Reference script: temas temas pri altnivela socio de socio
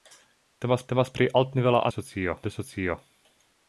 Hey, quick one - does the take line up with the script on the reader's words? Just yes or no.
yes